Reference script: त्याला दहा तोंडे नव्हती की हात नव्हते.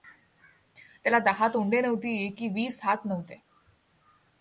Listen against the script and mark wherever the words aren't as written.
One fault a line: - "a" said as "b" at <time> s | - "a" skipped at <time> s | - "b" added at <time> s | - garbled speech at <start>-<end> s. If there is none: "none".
- "वीस" added at 2.5 s